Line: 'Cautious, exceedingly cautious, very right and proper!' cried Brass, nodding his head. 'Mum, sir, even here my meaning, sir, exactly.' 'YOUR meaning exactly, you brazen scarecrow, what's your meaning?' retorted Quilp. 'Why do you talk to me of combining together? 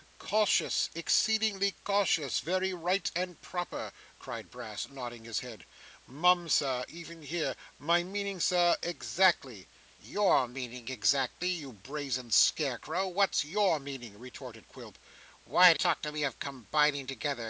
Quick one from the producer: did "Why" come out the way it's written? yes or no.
yes